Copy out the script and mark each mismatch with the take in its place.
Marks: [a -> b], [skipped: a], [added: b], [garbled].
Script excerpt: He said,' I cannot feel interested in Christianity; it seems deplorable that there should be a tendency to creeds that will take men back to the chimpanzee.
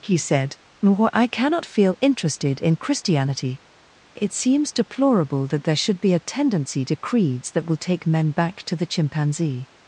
He said,' I cannot feel interested in Christianity; it seems deplorable that there should be a tendency to creeds that will take men back to the chimpanzee.